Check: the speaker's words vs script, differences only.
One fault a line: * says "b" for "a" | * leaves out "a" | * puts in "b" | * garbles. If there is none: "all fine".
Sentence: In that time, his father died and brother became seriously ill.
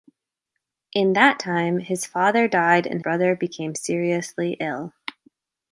all fine